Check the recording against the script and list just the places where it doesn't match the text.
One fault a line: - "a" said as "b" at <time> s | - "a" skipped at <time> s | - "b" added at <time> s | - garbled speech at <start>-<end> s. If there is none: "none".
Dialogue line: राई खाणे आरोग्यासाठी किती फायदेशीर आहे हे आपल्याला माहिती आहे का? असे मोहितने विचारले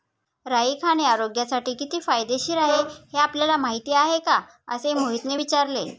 none